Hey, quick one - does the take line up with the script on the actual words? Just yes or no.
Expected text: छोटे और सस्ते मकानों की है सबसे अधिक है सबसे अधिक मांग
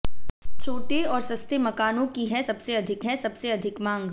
yes